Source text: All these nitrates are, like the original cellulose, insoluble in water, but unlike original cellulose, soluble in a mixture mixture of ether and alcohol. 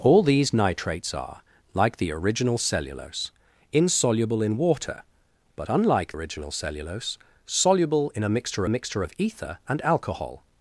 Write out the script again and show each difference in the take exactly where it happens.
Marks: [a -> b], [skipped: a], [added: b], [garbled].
All these nitrates are, like the original cellulose, insoluble in water, but unlike original cellulose, soluble in a mixture mixture of ether and alcohol.